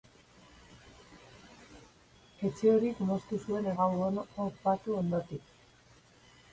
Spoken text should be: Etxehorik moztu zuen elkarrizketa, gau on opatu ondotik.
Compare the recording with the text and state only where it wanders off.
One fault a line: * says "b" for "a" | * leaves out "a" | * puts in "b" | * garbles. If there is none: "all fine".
* leaves out "elkarrizketa"